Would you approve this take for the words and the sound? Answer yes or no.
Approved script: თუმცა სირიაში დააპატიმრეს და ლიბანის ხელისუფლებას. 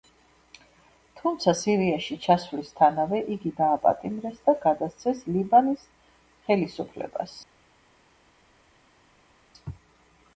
no